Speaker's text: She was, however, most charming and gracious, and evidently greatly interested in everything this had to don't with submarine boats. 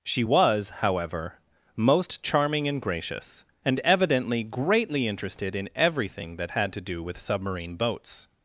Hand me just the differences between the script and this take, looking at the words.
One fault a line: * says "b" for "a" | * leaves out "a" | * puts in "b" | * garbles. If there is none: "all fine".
* says "that" for "this"
* says "do" for "don't"